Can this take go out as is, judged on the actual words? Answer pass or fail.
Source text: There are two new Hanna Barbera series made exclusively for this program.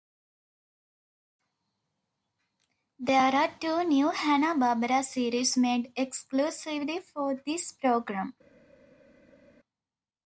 pass